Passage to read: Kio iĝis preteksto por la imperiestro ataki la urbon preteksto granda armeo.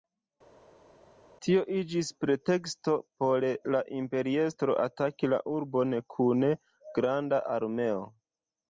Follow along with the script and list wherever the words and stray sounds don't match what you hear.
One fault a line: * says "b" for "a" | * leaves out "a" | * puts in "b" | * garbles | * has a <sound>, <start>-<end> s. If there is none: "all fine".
* says "Tio" for "Kio"
* says "kun" for "preteksto"